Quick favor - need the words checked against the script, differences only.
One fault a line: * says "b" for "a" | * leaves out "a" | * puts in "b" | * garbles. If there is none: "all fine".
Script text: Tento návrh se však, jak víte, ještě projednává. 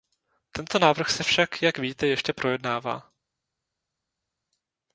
all fine